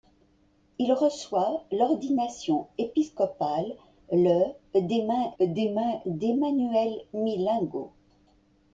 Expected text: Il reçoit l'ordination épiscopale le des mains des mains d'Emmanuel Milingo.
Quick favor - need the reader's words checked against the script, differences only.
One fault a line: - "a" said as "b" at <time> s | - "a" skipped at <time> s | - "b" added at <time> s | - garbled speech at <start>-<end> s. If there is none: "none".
none